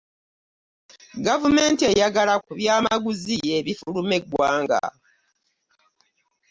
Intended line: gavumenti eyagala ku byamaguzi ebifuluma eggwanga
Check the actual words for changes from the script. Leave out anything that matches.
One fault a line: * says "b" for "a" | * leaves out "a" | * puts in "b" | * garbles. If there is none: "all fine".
all fine